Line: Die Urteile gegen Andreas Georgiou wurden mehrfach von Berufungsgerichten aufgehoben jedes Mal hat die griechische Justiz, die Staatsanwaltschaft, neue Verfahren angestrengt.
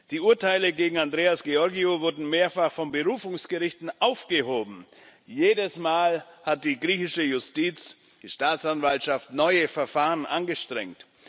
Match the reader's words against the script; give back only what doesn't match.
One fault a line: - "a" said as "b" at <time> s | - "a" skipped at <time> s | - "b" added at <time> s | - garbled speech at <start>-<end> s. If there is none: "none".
none